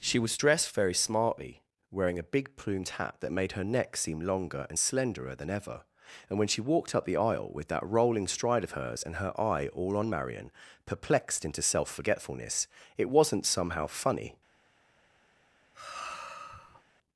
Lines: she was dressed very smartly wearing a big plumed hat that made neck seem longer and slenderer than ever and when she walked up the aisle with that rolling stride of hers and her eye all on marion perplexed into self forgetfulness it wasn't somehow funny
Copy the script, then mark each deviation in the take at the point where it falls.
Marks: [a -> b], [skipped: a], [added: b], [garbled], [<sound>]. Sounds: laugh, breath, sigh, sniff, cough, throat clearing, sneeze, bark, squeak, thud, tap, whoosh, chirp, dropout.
she was dressed very smartly wearing a big plumed hat that made [added: her] neck seem longer and slenderer than ever and when she walked up the aisle with that rolling stride of hers and her eye all on marion perplexed into self forgetfulness it wasn't somehow funny [sigh]